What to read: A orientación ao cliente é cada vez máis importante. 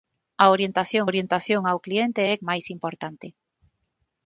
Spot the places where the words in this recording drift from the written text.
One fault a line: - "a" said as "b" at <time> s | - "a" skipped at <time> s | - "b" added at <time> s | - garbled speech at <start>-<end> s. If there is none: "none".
- "orientación" added at 1.1 s
- "cada vez" skipped at 2.3 s